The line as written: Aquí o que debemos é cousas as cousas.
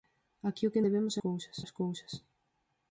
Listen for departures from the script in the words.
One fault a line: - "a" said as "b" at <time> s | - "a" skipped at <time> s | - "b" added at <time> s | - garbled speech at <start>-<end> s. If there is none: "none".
none